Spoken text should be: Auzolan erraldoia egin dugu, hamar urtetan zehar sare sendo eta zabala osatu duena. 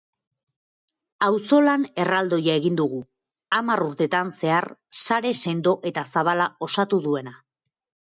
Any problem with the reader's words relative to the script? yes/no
no